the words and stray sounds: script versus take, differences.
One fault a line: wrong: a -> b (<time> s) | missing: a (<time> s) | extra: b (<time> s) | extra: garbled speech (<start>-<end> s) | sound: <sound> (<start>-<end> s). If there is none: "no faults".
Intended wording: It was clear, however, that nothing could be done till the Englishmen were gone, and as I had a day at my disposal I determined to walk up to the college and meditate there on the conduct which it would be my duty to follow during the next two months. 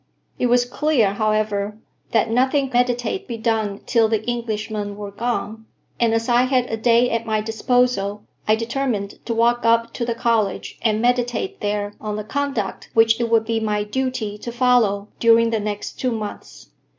wrong: could -> meditate (2.7 s)